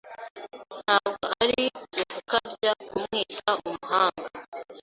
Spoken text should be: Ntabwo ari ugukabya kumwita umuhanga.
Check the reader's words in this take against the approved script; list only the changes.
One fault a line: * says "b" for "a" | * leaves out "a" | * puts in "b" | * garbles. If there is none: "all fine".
all fine